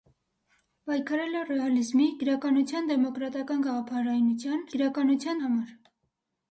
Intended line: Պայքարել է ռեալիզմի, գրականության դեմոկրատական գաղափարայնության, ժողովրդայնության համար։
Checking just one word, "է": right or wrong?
right